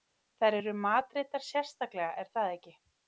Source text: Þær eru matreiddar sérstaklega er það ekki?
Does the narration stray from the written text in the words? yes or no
no